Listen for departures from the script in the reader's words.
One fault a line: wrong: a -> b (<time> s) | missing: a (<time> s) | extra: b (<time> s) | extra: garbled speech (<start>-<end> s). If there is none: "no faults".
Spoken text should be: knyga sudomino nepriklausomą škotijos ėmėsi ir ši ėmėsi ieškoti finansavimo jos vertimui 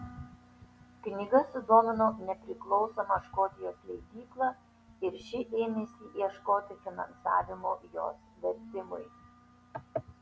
wrong: ėmėsi -> leidyklą (3.9 s)